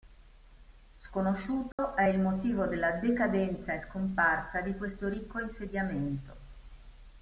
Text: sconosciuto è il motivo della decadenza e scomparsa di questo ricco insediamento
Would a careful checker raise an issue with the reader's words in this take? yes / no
no